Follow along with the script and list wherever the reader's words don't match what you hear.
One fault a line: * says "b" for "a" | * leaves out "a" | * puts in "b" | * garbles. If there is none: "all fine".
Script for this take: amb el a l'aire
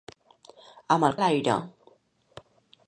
all fine